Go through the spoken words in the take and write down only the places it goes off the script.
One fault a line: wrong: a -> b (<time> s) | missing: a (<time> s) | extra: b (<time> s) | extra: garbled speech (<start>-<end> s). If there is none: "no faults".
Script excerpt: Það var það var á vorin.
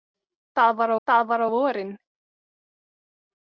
no faults